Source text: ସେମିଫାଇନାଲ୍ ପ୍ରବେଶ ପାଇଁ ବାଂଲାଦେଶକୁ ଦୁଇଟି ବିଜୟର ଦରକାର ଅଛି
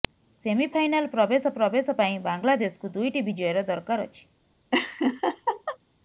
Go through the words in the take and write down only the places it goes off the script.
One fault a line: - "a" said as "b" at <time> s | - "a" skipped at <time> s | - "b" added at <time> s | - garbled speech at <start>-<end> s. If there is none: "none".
- "ପ୍ରବେଶ" added at 1.5 s